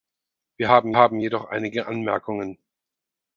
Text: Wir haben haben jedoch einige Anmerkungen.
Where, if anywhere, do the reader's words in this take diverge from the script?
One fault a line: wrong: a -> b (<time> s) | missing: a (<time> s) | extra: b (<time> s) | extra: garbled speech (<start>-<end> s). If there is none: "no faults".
no faults